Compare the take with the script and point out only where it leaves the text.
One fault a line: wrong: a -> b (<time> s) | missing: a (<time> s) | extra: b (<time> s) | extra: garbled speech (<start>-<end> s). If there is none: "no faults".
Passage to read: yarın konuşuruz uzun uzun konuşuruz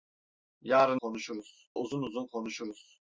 no faults